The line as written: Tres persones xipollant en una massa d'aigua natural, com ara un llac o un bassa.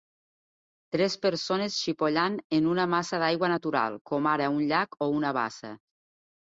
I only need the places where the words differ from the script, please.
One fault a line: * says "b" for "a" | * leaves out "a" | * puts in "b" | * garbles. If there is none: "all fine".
* says "una" for "un"